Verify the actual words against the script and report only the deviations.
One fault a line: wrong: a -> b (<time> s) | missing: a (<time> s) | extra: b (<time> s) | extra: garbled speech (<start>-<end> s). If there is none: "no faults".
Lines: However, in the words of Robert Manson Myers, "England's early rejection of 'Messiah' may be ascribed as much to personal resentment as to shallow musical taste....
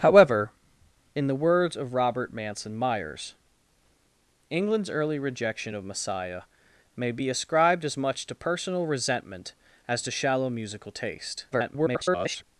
extra: garbled speech (11.5-12.4 s)